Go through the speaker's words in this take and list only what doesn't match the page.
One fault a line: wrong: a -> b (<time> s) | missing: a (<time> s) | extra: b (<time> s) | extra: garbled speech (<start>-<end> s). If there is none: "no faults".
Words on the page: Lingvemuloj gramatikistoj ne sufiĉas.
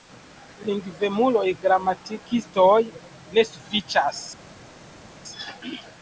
no faults